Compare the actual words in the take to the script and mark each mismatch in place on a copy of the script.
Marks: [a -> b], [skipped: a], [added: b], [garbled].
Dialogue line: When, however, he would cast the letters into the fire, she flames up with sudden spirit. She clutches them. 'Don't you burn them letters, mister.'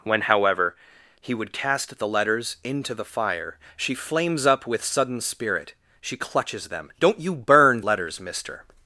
When, however, he would cast the letters into the fire, she flames up with sudden spirit. She clutches them. 'Don't you burn [skipped: them] letters, mister.'